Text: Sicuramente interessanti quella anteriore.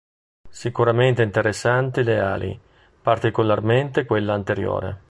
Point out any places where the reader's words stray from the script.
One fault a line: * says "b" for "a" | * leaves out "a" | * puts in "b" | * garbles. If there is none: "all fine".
* puts in "le ali particolarmente"